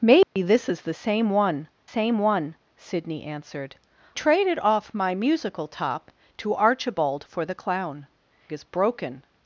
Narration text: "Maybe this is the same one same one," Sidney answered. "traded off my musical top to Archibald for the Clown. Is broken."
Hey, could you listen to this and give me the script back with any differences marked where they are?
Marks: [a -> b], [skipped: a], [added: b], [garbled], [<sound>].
"Maybe [dropout] this is the same one same one," Sidney answered. "traded off my musical top to Archibald for the Clown. Is broken."